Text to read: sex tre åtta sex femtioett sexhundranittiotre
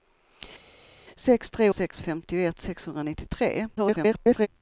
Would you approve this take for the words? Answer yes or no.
no